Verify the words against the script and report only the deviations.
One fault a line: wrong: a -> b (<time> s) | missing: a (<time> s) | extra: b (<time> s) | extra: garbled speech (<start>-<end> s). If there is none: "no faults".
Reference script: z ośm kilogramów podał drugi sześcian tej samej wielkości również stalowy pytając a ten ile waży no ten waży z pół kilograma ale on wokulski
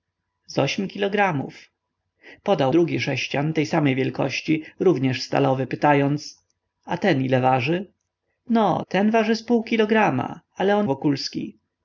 no faults